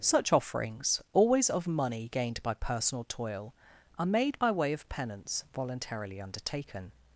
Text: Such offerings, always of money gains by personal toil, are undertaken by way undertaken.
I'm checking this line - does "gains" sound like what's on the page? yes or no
no